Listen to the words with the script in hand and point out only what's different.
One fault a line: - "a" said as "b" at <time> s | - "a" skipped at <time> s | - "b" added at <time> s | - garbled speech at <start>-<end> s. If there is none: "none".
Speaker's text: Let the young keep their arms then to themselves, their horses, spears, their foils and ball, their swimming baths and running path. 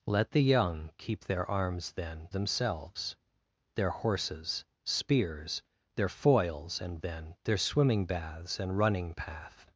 - "to" skipped at 2.3 s
- "ball" said as "then" at 7.0 s